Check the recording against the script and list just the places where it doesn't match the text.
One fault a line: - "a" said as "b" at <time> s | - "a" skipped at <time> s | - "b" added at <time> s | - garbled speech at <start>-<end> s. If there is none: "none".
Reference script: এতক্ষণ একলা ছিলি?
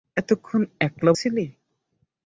none